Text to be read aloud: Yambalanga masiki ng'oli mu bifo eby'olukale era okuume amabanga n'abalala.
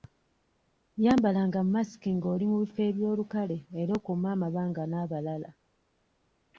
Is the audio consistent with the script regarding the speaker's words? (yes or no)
yes